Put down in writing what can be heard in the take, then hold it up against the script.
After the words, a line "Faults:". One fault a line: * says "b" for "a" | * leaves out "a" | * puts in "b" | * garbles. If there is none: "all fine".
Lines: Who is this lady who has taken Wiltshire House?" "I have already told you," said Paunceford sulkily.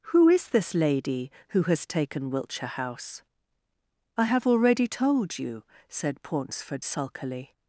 Who is this lady who has taken Wiltshire House?" "I have already told you," said Paunceford sulkily.
Faults:
all fine